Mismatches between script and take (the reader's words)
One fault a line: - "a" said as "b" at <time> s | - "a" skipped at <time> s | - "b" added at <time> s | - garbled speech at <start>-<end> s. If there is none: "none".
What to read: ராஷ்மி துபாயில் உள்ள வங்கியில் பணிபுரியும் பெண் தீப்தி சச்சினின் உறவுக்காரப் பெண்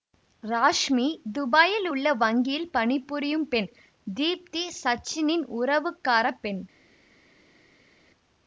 none